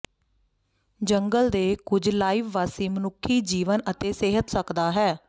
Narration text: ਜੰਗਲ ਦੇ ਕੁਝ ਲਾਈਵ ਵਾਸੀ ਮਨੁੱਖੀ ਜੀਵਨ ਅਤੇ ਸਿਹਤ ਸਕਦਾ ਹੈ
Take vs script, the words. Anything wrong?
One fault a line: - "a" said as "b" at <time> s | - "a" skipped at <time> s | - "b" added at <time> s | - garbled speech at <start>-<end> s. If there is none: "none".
none